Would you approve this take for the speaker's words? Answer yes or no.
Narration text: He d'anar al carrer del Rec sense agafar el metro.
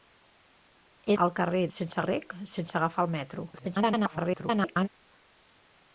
no